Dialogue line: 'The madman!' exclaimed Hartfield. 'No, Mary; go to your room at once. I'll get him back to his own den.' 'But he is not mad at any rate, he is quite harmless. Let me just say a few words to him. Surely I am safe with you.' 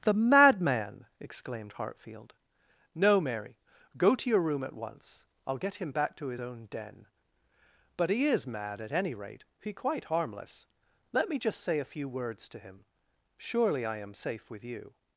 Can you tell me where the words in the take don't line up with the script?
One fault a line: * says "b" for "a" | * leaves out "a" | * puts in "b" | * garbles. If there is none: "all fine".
* leaves out "not"
* leaves out "is"